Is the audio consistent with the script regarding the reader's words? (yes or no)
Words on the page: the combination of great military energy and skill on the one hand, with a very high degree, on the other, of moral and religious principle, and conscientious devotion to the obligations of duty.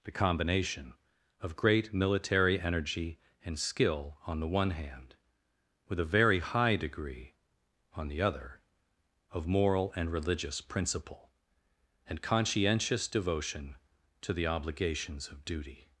yes